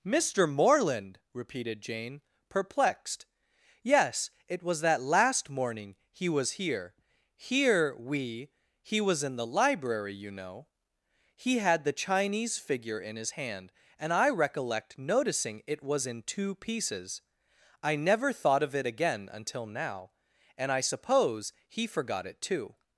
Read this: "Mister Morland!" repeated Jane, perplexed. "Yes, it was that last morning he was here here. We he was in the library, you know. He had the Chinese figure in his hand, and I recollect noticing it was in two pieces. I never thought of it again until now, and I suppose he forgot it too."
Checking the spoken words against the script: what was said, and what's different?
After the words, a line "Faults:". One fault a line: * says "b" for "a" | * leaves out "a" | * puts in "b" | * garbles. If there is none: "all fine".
"Mister Morland!" repeated Jane, perplexed. "Yes, it was that last morning he was here here. We he was in the library, you know. He had the Chinese figure in his hand, and I recollect noticing it was in two pieces. I never thought of it again until now, and I suppose he forgot it too."
Faults:
all fine